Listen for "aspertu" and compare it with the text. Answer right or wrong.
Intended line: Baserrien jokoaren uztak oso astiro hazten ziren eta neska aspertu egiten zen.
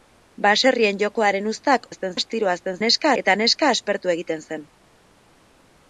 right